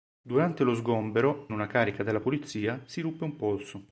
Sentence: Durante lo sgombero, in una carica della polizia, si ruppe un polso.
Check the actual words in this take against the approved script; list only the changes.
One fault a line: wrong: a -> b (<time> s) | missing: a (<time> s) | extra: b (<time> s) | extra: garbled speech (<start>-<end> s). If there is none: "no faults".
missing: in (1.5 s)